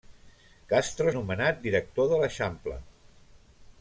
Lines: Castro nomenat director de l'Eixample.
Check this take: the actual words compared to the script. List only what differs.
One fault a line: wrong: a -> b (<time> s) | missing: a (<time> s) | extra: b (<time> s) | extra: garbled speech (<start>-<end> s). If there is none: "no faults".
no faults